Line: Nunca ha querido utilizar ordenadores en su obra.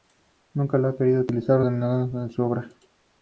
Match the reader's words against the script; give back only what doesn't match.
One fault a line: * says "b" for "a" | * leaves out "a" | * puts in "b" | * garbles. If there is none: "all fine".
all fine